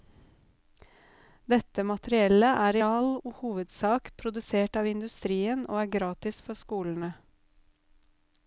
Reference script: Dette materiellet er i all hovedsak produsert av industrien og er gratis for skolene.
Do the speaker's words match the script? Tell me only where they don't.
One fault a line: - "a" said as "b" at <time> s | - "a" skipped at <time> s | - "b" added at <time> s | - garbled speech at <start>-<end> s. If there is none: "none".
none